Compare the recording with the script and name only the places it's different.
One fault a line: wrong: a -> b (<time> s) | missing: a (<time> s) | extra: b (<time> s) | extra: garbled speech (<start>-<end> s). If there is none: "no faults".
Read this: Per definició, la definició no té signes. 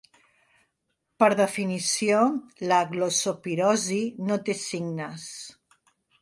wrong: definició -> glossopirosi (3.0 s)